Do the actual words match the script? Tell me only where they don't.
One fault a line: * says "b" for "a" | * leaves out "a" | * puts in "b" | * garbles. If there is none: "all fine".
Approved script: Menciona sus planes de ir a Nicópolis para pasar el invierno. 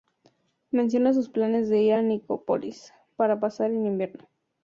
all fine